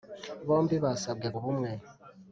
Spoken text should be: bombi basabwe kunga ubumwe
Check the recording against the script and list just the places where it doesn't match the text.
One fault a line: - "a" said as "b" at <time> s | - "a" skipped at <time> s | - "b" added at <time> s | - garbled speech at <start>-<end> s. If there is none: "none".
- "kunga" skipped at 1.3 s